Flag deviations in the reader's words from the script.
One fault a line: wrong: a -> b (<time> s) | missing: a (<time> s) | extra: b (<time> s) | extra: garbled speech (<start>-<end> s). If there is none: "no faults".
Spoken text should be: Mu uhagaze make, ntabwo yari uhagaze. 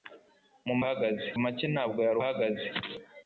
no faults